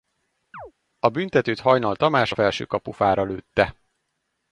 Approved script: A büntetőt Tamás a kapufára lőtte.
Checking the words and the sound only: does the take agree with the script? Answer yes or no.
no